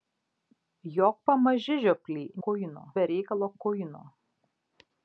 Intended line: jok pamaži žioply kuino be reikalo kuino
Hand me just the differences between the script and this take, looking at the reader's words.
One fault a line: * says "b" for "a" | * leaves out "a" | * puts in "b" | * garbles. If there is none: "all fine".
all fine